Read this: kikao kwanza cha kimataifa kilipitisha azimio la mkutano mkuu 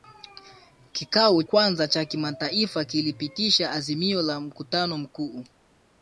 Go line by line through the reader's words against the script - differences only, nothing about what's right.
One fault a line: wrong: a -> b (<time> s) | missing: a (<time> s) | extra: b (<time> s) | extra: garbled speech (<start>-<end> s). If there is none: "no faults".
no faults